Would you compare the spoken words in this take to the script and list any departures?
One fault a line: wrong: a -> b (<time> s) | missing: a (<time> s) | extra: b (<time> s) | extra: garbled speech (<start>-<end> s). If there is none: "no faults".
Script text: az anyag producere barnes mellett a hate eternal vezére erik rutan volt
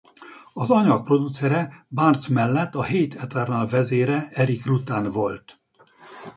no faults